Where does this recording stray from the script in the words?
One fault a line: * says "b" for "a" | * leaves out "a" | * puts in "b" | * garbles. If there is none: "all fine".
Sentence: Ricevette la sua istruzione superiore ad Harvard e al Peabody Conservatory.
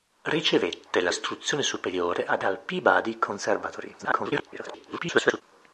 * leaves out "sua"
* leaves out "Harvard e"
* garbles